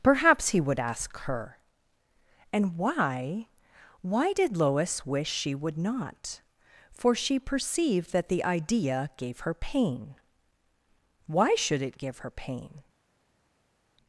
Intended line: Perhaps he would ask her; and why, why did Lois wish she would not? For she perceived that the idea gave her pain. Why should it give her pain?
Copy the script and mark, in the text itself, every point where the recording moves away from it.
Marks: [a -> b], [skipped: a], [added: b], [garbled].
Perhaps he would ask her; and why, why did Lois wish she would not? For she perceived that the idea gave her pain. Why should it give her pain?